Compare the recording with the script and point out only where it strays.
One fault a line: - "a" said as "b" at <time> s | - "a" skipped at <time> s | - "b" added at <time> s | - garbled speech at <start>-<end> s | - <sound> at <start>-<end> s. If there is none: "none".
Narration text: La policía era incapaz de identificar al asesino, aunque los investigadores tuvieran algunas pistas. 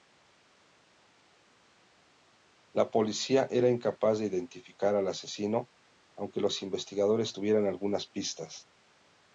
none